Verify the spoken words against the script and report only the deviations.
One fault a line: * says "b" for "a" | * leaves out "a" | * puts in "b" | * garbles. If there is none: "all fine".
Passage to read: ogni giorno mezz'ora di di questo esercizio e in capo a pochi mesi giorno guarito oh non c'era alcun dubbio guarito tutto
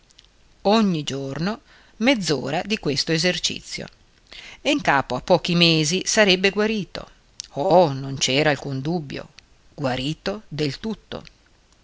* leaves out "di"
* says "sarebbe" for "giorno"
* puts in "del"